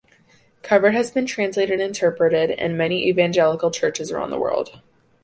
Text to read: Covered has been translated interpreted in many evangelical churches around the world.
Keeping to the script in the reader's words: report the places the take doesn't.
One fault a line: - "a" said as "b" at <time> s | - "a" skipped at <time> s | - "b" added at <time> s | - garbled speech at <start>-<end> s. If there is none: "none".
none